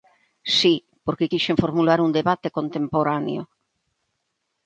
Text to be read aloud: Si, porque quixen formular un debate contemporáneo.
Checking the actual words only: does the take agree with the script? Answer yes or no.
yes